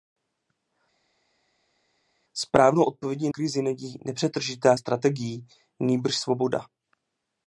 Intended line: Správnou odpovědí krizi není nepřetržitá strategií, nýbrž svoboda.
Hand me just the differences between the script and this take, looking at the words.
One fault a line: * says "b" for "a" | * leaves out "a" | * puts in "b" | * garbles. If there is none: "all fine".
all fine